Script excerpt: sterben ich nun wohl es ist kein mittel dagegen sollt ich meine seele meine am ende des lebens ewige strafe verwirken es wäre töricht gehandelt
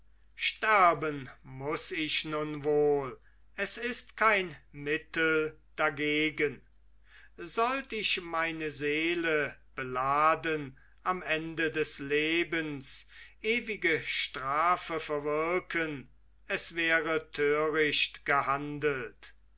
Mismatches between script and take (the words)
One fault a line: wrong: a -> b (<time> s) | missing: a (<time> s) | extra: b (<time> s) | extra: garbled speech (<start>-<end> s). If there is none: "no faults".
extra: muß (1.4 s)
wrong: meine -> beladen (9.8 s)